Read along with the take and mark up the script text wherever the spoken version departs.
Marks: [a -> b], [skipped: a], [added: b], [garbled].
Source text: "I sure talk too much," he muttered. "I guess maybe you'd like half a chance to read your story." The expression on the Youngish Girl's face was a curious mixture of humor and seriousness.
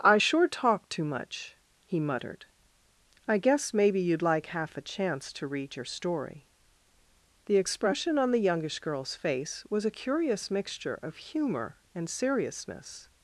"I sure talk too much," he muttered. "I guess maybe you'd like half a chance to read your story." The expression on the Youngish Girl's face was a curious mixture of humor and seriousness.